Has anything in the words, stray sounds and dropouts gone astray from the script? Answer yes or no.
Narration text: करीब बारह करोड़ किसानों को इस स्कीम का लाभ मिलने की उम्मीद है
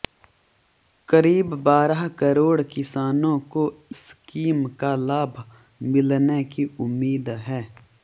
yes